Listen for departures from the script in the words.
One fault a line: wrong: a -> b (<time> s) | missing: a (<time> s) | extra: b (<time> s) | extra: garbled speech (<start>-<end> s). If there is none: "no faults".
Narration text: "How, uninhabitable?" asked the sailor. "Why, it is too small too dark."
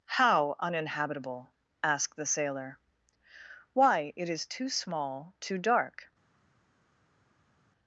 no faults